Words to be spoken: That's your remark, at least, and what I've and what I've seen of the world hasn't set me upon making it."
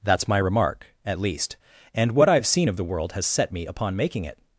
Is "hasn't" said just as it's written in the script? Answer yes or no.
no